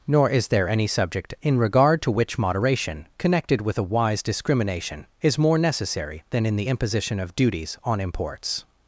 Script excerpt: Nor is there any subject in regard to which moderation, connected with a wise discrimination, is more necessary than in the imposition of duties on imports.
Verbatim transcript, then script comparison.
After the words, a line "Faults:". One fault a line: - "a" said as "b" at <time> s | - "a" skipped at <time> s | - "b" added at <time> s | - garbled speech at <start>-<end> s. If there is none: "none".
Nor is there any subject in regard to which moderation, connected with a wise discrimination, is more necessary than in the imposition of duties on imports.
Faults:
none